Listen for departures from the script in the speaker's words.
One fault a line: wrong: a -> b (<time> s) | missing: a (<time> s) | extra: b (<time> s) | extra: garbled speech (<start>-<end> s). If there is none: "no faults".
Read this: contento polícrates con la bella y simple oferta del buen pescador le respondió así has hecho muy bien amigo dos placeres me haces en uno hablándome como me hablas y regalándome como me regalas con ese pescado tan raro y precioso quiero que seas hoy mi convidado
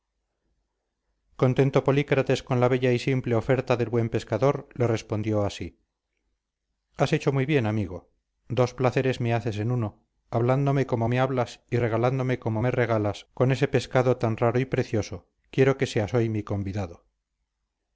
no faults